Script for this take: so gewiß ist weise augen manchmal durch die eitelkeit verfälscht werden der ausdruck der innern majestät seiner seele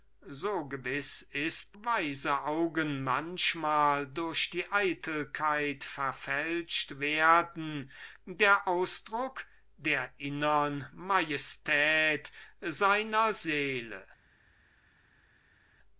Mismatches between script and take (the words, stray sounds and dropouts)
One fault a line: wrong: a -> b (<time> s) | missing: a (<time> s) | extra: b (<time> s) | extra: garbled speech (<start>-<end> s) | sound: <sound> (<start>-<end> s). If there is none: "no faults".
no faults